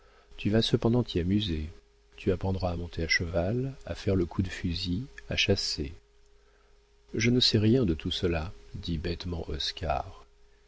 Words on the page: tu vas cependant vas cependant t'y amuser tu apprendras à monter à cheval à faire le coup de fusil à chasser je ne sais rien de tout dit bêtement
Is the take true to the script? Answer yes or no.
no